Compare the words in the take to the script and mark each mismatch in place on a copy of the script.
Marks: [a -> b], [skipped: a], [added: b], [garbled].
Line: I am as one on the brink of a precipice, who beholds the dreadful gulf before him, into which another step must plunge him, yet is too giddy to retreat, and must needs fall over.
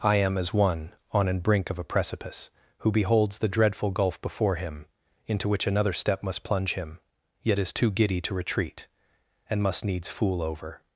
I am as one on [the -> an] brink of a precipice, who beholds the dreadful gulf before him, into which another step must plunge him, yet is too giddy to retreat, and must needs [fall -> fool] over.